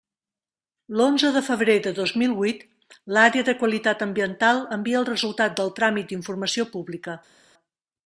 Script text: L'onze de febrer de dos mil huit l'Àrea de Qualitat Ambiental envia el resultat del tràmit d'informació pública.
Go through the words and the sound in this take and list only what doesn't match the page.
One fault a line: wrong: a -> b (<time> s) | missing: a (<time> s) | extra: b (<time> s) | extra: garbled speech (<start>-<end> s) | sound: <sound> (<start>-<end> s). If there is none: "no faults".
no faults